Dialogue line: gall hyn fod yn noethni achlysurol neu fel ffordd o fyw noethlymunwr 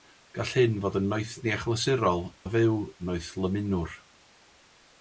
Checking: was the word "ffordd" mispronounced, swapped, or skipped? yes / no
yes